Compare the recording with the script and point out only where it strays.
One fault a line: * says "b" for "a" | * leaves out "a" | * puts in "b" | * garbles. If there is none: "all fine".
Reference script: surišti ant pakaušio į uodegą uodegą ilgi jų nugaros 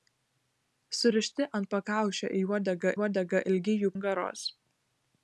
all fine